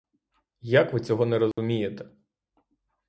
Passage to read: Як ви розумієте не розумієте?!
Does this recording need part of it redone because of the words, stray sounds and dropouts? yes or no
yes